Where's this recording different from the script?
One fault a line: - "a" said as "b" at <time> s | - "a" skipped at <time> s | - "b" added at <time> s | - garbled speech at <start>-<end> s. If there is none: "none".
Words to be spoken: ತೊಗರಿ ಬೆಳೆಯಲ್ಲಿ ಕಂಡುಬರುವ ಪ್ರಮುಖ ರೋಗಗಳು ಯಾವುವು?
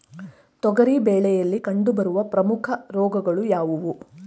none